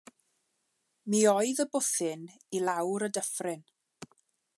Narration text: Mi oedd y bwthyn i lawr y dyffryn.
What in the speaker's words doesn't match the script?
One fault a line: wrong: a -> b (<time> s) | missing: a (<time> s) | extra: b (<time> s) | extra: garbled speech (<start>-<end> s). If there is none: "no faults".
no faults